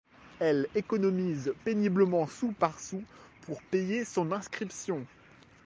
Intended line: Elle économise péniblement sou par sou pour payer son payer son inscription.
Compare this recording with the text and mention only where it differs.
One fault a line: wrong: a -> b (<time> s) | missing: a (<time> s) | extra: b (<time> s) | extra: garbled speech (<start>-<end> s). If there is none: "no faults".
missing: payer son (4.3 s)